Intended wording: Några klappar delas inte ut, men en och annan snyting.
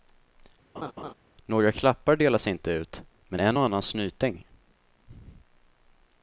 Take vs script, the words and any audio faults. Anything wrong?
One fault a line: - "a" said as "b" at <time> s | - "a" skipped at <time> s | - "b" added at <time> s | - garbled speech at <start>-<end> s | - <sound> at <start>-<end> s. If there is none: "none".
- laugh at 0.7-1.1 s